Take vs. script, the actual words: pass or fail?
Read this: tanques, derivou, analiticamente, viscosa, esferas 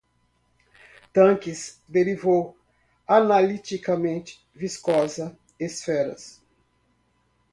pass